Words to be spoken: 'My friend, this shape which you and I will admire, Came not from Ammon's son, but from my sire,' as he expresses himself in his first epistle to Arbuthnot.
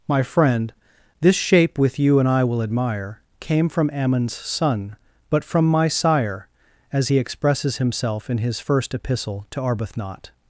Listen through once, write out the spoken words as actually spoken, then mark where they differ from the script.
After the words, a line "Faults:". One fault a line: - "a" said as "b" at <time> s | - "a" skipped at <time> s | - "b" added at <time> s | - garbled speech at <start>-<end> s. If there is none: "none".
'My friend, this shape with you and I will admire, Came from Ammon's son, but from my sire,' as he expresses himself in his first epistle to Arbuthnot.
Faults:
- "which" said as "with" at 1.8 s
- "not" skipped at 3.7 s